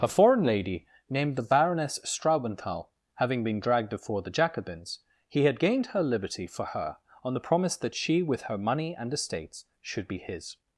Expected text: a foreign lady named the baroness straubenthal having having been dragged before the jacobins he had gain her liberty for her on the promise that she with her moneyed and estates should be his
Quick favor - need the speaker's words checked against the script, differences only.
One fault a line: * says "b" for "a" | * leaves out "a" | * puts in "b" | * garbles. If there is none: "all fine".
* leaves out "having"
* says "gained" for "gain"
* says "money" for "moneyed"